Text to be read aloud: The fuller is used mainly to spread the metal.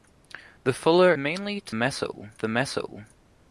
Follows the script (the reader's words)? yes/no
no